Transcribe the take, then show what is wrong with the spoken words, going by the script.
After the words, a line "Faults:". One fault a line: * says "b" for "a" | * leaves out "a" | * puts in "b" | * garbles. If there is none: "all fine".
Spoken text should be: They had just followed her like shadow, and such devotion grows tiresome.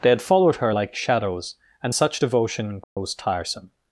They had followed her like shadows, and such devotion grows tiresome.
Faults:
* leaves out "just"
* says "shadows" for "shadow"